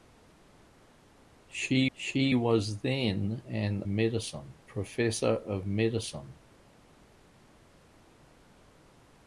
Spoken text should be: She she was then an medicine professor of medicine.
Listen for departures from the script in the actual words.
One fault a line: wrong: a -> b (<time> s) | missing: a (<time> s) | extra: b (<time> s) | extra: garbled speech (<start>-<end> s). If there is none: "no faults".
no faults